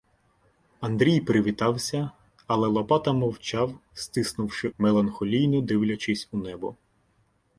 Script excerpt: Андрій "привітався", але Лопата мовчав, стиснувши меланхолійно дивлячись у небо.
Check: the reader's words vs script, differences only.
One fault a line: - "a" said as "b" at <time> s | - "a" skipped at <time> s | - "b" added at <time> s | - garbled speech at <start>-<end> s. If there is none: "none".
none